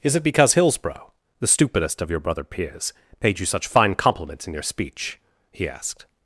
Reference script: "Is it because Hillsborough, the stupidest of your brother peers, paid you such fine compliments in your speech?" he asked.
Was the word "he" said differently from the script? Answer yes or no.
no